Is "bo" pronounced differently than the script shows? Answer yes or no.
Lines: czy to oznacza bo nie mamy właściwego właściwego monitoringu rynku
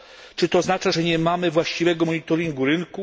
yes